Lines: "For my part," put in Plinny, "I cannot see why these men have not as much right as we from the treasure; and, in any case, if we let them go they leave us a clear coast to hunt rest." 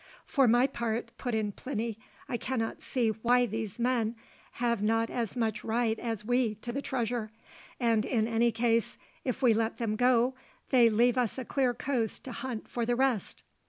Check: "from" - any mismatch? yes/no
yes